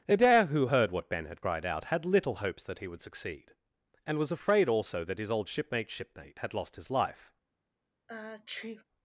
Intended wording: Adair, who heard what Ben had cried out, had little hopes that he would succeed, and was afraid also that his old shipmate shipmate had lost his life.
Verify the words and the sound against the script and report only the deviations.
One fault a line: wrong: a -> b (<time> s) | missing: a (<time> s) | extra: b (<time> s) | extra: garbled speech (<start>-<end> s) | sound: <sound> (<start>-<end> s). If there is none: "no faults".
sound: sneeze (8.1-8.8 s)